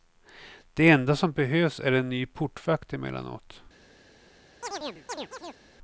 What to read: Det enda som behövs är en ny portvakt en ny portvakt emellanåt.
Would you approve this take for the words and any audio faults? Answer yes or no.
no